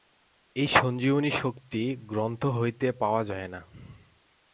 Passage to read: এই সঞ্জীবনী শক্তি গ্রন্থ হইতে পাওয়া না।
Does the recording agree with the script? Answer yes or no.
no